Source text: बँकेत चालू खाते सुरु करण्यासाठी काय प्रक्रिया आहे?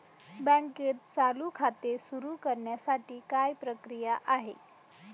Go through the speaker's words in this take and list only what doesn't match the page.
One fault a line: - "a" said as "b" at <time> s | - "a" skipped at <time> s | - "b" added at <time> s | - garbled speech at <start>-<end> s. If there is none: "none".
none